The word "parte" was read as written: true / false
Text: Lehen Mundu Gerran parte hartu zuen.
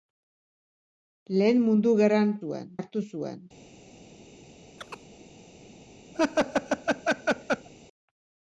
false